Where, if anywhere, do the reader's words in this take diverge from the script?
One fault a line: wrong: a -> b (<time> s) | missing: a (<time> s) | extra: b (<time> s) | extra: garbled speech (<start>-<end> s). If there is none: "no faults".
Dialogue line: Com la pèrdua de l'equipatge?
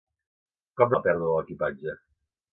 no faults